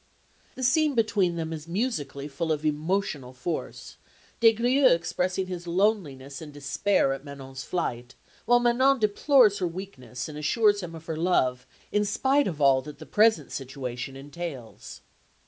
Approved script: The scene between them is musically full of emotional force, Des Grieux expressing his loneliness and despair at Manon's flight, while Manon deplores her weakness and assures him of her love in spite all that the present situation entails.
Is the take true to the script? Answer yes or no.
no